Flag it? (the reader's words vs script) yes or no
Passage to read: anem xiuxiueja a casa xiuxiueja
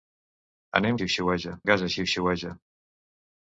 no